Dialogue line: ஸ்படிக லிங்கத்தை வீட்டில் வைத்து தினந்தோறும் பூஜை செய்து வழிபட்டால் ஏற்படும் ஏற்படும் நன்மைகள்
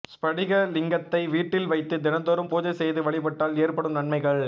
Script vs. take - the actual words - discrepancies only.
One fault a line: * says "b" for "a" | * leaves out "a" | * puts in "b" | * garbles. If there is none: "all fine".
* leaves out "ஏற்படும்"